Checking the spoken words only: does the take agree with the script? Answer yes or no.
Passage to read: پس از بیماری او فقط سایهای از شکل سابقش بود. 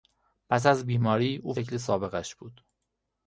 no